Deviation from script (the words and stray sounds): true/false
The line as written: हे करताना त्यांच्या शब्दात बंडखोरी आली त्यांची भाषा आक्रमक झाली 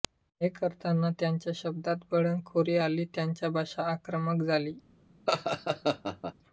true